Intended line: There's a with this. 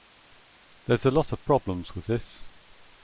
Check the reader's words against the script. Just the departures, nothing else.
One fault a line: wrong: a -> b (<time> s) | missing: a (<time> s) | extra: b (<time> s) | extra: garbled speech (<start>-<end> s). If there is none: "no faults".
extra: lot of problems (1.1 s)